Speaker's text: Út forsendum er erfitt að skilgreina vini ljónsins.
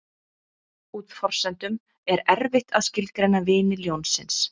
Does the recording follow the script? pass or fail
pass